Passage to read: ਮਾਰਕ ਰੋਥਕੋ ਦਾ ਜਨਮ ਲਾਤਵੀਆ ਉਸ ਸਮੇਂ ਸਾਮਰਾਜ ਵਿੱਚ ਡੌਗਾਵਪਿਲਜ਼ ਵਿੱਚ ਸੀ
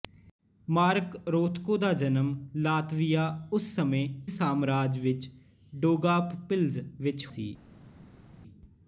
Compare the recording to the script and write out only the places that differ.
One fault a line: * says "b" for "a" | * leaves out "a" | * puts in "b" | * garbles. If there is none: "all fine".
all fine